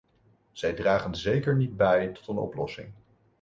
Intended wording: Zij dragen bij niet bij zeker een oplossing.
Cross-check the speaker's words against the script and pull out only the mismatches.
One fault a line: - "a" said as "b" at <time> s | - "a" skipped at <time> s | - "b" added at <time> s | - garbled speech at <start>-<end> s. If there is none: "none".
- "bij" said as "zeker" at 1.1 s
- "zeker" said as "tot" at 2.1 s